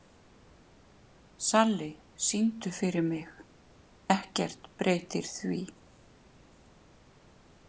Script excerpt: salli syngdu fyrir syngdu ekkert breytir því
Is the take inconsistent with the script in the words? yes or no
yes